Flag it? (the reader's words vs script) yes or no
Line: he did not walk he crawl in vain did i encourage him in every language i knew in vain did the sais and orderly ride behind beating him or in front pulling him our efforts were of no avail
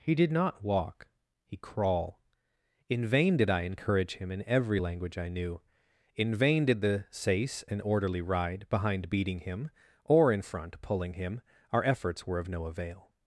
no